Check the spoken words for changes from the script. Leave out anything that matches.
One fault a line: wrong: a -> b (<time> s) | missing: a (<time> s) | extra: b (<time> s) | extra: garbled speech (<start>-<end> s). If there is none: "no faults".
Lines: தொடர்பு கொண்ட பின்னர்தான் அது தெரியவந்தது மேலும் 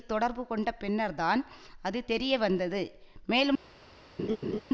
no faults